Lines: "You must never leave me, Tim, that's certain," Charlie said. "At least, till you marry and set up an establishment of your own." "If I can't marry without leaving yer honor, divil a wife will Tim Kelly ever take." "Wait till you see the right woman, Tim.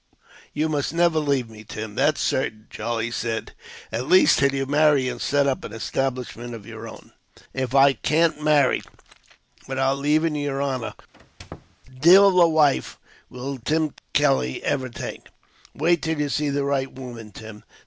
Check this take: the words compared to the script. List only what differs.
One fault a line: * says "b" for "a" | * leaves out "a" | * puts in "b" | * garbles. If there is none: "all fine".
all fine